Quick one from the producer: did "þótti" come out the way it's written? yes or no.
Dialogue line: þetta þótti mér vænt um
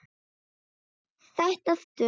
no